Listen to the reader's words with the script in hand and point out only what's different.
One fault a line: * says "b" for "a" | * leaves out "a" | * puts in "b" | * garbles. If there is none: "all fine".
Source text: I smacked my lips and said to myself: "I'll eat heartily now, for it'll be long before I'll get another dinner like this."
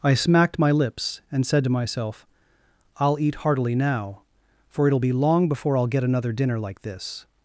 all fine